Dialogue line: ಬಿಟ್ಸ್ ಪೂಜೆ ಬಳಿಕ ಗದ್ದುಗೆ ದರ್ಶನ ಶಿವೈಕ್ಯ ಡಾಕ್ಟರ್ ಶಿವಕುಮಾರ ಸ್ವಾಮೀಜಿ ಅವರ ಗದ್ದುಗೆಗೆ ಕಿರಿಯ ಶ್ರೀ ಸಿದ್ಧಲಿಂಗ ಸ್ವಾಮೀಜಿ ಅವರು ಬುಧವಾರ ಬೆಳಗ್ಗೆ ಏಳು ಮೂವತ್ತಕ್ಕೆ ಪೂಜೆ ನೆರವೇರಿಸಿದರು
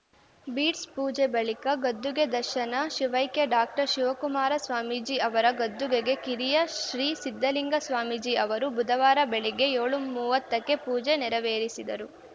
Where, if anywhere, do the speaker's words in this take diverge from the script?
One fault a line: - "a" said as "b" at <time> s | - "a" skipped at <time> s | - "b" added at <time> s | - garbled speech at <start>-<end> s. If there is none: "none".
none